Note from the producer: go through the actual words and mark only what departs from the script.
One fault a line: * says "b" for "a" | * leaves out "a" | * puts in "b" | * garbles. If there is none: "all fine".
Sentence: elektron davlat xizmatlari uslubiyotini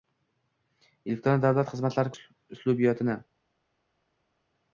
all fine